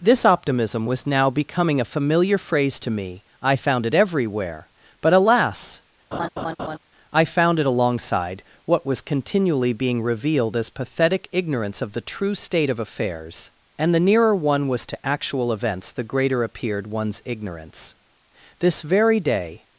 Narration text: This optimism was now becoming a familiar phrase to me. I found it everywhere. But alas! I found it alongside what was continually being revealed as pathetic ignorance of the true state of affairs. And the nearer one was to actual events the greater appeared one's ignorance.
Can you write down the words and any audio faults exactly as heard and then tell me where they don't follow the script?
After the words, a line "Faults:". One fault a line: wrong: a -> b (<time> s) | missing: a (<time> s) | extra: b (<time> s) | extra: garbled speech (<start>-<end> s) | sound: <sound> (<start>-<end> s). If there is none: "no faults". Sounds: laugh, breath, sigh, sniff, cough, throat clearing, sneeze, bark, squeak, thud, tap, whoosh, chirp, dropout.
This optimism was now becoming a familiar phrase to me. I found it everywhere. But alas! I found it alongside what was continually being revealed as pathetic ignorance of the true state of affairs. And the nearer one was to actual events the greater appeared one's ignorance. This very day
Faults:
sound: laugh (6.1-6.8 s)
extra: This very day (18.6 s)